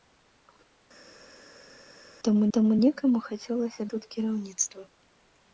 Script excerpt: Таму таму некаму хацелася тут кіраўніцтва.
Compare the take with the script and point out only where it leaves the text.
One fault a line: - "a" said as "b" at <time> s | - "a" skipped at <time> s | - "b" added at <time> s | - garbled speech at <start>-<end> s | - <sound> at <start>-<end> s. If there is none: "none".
none